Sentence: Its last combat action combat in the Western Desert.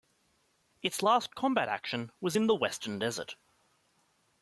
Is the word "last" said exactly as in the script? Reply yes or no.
yes